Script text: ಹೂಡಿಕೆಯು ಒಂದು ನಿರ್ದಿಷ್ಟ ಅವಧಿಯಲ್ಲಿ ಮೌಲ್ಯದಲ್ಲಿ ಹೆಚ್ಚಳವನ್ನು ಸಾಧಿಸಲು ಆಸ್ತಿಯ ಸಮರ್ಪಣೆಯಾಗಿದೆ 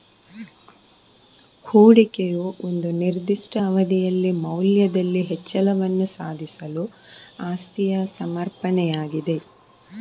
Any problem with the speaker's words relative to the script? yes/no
no